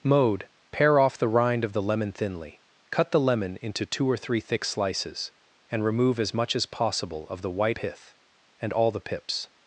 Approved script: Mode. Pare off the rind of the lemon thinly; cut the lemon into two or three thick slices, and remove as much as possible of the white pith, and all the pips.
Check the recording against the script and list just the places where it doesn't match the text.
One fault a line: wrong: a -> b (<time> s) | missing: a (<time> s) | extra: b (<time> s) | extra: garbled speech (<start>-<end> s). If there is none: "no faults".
no faults